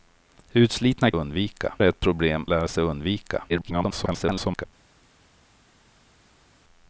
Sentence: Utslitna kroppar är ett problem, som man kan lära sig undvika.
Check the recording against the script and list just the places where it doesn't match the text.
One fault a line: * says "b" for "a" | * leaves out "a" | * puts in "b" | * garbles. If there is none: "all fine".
* says "undvika" for "kroppar"
* leaves out "som man kan"
* garbles